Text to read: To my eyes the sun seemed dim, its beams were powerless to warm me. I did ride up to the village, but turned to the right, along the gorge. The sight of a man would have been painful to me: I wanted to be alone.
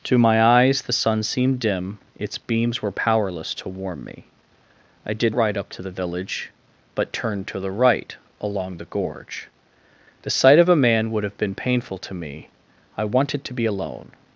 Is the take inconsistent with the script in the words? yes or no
no